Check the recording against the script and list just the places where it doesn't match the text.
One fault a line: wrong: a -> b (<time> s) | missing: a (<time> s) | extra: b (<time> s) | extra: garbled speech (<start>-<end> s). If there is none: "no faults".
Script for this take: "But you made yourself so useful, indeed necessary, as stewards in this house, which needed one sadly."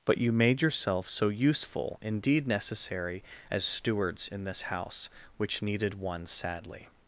no faults